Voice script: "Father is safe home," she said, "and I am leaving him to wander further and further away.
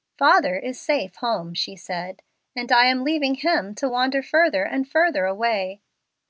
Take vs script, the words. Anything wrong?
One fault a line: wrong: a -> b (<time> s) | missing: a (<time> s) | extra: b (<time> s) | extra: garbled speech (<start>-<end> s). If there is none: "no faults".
no faults